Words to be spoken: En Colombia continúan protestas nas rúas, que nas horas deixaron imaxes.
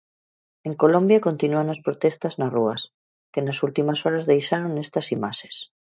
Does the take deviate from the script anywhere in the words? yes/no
yes